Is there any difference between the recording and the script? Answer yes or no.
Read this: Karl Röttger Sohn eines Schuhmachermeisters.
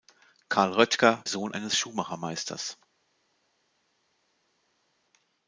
no